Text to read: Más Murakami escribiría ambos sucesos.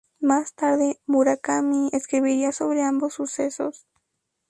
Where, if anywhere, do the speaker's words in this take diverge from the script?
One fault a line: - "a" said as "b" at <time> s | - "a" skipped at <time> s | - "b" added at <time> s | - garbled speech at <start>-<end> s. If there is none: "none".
- "tarde" added at 0.6 s
- "sobre" added at 2.5 s